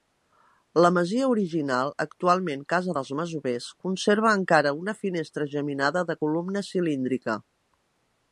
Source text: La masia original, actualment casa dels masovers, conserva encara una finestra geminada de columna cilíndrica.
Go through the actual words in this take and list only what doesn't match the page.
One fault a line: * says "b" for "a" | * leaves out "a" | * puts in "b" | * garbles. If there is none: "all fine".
all fine